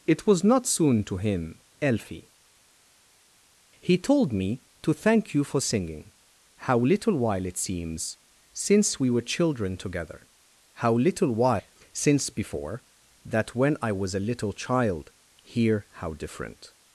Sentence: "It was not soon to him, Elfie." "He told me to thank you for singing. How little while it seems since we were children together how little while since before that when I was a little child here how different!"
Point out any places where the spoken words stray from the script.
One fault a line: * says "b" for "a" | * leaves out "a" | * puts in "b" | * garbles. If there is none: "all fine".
all fine